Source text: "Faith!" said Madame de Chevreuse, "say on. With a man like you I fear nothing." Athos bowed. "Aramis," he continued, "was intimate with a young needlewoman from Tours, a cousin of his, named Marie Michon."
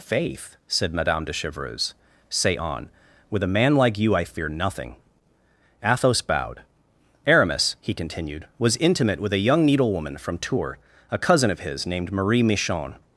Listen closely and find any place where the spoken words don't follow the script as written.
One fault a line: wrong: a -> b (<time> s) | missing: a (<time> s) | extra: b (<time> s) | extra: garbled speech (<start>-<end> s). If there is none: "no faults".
no faults